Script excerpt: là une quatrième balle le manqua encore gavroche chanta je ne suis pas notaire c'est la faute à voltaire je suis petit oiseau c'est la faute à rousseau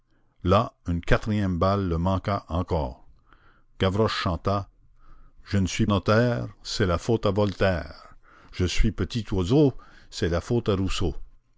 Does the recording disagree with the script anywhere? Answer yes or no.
yes